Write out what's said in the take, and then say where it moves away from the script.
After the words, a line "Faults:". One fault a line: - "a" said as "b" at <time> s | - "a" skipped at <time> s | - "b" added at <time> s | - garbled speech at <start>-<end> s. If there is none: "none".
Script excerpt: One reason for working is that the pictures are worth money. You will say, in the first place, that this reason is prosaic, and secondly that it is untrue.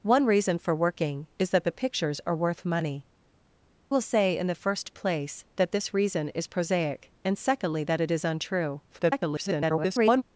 One reason for working is that the pictures are worth money. Will say, in the first place, that this reason is prosaic, and secondly that it is untrue. [garbled]
Faults:
- "You" skipped at 3.1 s
- garbled speech at 8.9-10.2 s